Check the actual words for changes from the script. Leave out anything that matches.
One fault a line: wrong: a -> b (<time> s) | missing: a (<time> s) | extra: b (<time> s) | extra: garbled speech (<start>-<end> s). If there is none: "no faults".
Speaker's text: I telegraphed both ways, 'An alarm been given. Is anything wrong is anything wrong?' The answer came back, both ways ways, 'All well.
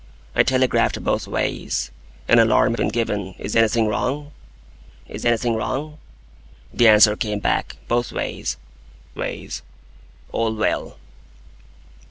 no faults